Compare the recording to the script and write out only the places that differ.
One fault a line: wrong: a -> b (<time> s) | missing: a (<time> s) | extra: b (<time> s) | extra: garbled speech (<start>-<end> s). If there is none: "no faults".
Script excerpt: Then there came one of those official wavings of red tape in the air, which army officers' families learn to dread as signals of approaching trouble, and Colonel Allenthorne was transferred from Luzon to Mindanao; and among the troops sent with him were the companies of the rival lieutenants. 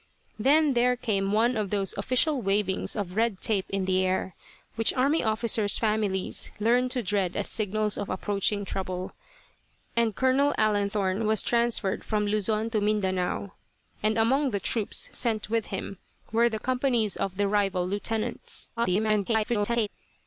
extra: garbled speech (18.8-19.9 s)